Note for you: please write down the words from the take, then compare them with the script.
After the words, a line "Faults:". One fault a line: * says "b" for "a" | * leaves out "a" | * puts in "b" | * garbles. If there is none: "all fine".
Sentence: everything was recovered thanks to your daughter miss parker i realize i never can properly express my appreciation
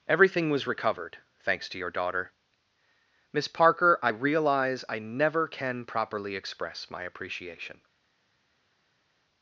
everything was recovered thanks to your daughter miss parker i realize i never can properly express my appreciation
Faults:
all fine